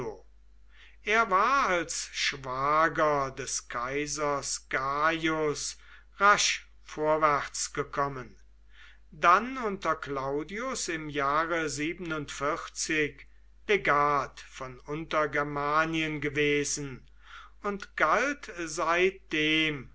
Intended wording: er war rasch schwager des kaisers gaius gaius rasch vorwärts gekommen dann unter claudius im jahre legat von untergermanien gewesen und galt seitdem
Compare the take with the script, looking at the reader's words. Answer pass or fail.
fail